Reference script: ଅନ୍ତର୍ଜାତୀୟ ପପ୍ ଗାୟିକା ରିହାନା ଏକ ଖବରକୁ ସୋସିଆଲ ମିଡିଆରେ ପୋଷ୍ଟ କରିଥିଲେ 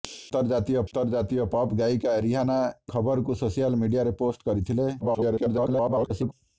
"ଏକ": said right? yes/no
no